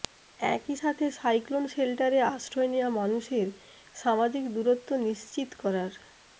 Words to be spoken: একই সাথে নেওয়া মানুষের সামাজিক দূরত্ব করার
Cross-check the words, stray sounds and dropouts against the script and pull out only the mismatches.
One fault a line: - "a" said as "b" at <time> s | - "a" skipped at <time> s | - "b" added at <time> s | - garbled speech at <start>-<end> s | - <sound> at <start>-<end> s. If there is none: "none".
- "সাইক্লোন শেল্টারে আশ্রয়" added at 1.2 s
- "নিশ্চিত" added at 5.1 s